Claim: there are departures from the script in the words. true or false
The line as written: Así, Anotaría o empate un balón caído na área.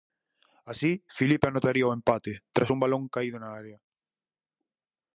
true